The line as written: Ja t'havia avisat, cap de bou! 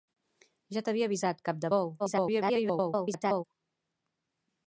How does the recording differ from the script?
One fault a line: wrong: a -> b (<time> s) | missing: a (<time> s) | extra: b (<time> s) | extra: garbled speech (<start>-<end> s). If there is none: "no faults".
extra: garbled speech (2.0-3.4 s)